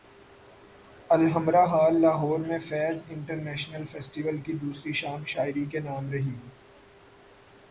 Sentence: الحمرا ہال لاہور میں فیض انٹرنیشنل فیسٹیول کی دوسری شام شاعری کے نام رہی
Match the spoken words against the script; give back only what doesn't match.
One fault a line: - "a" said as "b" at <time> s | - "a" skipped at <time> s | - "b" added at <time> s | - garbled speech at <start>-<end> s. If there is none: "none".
none